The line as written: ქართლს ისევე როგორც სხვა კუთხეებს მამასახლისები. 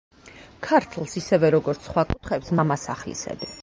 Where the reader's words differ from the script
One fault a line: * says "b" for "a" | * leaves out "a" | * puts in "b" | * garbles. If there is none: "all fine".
all fine